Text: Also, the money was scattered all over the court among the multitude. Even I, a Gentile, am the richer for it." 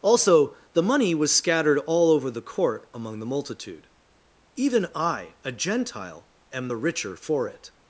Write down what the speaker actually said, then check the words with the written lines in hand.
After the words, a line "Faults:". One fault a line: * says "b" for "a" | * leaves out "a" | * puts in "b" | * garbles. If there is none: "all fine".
Also, the money was scattered all over the court among the multitude. Even I, a Gentile, am the richer for it."
Faults:
all fine